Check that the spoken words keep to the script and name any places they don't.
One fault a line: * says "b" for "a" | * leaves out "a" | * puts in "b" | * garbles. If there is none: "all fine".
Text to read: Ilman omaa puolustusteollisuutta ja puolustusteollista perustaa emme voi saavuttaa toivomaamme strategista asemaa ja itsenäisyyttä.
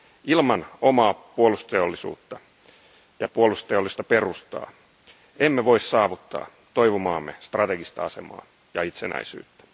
all fine